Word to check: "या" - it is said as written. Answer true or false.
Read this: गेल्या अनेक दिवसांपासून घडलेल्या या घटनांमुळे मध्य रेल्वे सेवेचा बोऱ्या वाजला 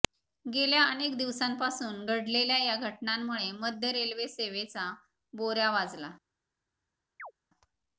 true